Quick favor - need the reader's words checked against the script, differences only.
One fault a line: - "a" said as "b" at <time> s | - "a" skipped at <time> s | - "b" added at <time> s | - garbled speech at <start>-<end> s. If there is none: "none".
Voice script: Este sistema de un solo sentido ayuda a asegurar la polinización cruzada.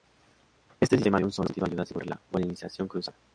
none